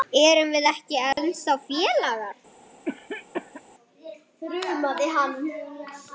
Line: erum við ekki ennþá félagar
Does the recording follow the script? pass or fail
pass